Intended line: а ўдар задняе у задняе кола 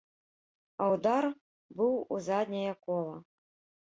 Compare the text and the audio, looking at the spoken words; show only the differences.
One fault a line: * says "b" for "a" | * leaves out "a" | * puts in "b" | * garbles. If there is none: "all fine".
* says "быў" for "задняе"